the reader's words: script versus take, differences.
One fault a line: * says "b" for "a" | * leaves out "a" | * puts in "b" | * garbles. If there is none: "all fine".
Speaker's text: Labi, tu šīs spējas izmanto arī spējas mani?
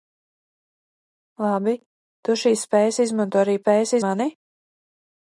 all fine